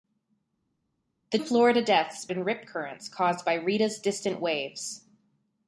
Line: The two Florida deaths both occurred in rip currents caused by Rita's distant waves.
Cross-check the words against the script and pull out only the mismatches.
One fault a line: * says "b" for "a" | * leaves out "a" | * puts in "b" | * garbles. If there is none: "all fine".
* leaves out "two"
* leaves out "both occurred"